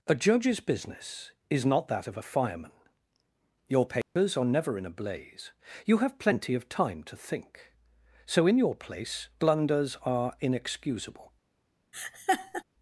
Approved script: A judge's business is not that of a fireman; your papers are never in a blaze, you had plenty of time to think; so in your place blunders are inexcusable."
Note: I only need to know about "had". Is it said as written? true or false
false